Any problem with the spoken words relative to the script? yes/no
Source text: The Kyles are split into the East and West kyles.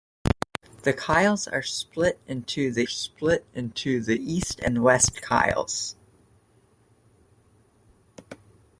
yes